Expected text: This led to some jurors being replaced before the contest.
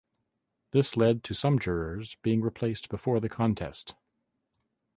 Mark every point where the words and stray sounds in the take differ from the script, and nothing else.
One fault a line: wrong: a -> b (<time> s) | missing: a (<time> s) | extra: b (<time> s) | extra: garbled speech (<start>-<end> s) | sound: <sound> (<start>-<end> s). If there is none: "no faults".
no faults